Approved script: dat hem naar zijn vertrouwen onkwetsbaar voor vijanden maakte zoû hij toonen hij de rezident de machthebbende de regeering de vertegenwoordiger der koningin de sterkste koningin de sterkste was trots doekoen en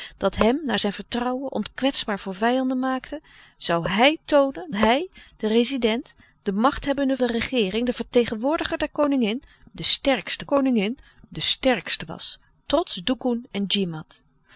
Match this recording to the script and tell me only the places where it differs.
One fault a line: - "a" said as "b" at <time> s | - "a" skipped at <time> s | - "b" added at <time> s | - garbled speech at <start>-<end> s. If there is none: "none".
none